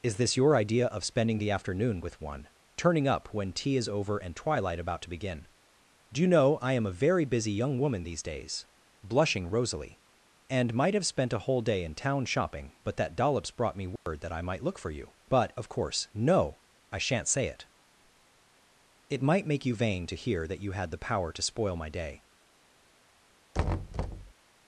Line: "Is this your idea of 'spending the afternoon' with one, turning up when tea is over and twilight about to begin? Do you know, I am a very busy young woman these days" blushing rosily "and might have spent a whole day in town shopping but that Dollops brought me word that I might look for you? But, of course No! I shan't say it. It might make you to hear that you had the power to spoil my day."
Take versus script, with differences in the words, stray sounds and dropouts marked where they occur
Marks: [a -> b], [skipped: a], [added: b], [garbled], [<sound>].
"Is this your idea of 'spending the afternoon' with one, turning up when tea is over and twilight about to begin? Do you know, I am a very busy young woman these days" blushing rosily "and might have spent a whole day in town shopping but that Dollops brought me word [dropout] that I might look for you? But, of course No! I shan't say it. It might make you [added: vain] to hear that you had the power to spoil my day." [thud]